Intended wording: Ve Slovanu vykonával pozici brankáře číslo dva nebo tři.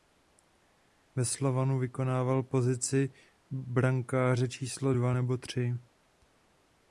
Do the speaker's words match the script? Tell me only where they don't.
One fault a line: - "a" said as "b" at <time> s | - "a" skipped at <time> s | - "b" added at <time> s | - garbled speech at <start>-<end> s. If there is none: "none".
none